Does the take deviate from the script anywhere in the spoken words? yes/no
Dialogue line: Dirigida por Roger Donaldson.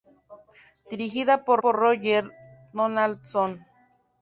yes